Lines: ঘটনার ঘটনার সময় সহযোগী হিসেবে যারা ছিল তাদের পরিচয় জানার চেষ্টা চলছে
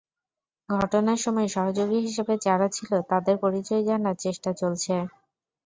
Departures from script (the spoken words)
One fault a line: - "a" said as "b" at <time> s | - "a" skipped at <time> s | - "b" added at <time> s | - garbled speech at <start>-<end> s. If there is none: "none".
- "ঘটনার" skipped at 1.2 s